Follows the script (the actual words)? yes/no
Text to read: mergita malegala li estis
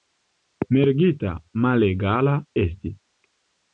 no